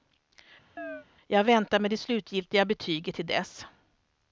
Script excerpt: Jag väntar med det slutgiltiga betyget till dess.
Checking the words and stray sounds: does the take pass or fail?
fail